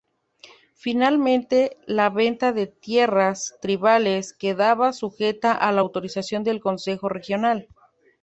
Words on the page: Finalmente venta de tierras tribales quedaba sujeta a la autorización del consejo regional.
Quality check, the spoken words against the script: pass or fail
fail